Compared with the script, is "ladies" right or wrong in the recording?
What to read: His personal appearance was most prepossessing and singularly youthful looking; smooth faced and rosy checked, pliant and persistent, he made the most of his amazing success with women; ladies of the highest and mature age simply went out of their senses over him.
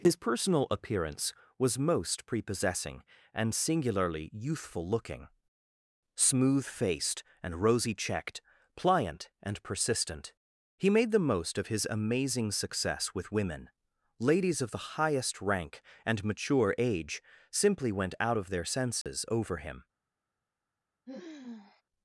right